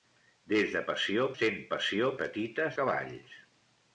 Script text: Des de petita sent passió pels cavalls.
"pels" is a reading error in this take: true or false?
true